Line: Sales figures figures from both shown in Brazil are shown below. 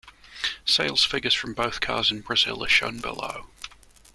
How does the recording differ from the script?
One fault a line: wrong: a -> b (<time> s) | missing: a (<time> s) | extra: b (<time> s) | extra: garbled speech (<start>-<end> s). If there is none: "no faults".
missing: figures (1.4 s)
wrong: shown -> cars (1.8 s)